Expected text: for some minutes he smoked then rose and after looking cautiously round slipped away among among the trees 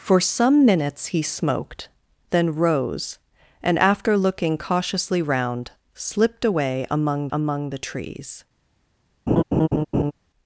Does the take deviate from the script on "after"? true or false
false